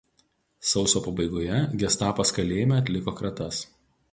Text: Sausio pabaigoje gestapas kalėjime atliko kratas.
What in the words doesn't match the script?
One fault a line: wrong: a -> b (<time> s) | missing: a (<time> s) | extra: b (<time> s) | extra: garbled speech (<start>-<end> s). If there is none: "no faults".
no faults